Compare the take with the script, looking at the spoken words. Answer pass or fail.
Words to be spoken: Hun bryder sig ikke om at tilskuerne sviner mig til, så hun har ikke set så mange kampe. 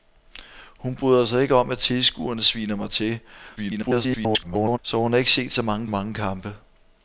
fail